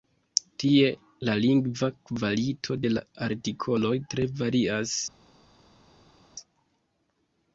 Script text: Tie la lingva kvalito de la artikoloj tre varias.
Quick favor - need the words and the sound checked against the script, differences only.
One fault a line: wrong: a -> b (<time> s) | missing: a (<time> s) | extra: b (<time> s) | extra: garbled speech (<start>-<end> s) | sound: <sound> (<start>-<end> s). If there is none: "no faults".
no faults